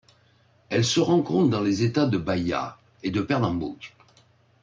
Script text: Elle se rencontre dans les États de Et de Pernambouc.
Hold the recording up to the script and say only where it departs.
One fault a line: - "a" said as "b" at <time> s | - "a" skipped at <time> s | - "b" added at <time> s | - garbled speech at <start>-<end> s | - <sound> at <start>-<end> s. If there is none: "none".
- "Bahia" added at 2.2 s